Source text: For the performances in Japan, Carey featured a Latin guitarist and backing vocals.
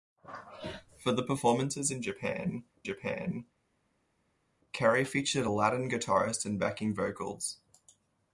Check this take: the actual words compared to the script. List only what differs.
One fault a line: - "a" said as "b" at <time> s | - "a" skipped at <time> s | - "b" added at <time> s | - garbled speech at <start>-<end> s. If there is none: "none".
- "Japan" added at 2.8 s